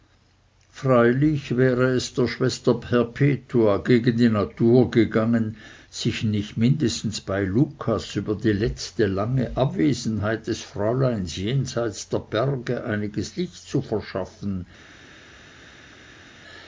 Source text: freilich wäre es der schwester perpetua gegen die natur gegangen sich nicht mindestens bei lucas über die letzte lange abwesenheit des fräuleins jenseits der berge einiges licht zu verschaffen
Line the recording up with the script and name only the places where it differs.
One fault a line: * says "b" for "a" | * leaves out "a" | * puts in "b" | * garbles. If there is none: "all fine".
all fine